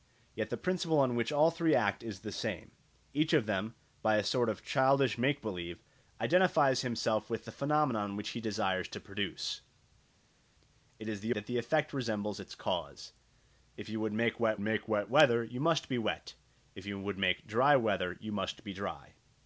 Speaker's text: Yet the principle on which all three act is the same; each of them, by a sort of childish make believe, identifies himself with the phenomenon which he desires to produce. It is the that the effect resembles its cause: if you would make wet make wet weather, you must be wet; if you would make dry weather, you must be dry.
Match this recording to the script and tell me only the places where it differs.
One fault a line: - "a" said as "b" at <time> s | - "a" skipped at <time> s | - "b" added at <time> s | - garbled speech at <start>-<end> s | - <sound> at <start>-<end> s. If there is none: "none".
none